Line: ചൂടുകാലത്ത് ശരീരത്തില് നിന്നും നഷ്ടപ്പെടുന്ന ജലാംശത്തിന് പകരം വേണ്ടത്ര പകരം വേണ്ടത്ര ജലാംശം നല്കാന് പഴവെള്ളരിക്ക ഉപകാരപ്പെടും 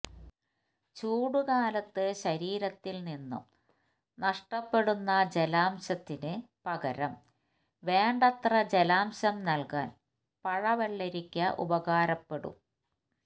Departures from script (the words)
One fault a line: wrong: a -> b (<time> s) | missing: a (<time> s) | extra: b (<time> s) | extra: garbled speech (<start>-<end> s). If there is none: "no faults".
missing: പകരം വേണ്ടത്ര (8.6 s)